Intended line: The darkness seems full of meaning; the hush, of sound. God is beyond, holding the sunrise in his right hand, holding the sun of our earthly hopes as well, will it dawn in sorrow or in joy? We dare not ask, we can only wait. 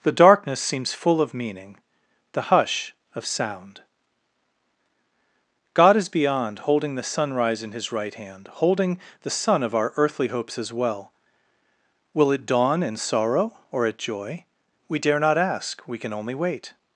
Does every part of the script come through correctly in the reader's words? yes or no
no